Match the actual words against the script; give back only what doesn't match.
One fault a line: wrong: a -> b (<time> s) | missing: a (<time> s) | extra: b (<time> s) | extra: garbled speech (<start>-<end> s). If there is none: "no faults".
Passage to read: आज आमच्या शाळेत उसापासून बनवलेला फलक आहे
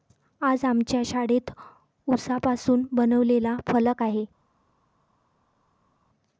no faults